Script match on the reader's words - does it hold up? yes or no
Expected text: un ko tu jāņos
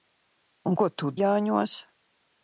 yes